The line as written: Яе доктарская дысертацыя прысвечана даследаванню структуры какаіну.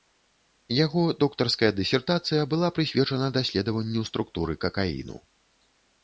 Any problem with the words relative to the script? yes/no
yes